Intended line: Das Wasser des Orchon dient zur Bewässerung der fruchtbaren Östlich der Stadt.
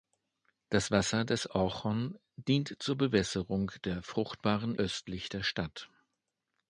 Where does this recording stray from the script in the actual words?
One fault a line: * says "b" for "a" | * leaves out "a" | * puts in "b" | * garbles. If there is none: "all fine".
all fine